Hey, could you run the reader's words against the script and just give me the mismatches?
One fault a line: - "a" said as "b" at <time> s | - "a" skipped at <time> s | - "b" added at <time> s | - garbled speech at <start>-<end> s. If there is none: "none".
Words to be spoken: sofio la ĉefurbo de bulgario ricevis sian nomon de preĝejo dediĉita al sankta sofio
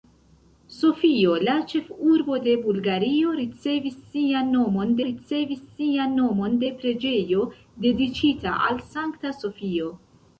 - "ricevis sian nomon" added at 5.1 s